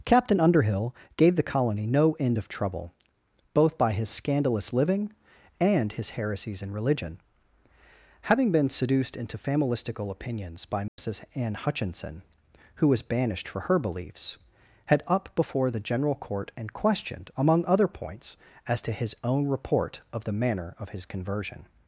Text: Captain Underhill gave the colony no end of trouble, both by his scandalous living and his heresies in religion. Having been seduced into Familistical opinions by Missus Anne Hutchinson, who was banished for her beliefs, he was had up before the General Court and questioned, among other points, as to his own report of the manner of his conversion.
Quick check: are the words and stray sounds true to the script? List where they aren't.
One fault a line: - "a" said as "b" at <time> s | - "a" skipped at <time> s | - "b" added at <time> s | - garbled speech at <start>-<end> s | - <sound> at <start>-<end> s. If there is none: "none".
- dropout at 10.9-11.0 s
- "he was" skipped at 14.4 s